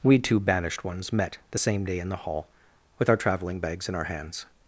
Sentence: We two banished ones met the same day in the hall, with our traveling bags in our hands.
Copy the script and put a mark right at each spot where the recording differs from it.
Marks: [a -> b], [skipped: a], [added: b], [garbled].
We two banished ones met the same day in the hall, with our traveling bags in our hands.